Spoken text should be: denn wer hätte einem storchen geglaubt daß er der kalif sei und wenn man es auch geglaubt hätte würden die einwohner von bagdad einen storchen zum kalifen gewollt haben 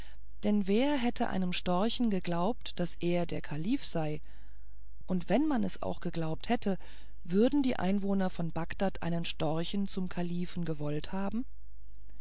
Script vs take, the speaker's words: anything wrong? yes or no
no